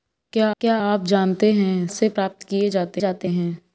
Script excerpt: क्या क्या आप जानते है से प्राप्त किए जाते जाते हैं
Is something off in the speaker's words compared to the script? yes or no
no